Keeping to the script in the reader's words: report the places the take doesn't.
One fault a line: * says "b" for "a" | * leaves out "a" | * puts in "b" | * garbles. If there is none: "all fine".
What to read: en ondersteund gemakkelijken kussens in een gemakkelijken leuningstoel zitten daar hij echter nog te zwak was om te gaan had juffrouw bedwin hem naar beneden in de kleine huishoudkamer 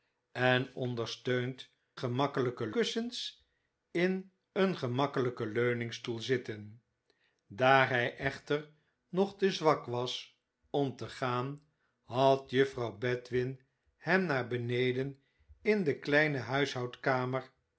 all fine